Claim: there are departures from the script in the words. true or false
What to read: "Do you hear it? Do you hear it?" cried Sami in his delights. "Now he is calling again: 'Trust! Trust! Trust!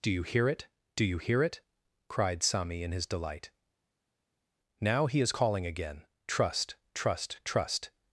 true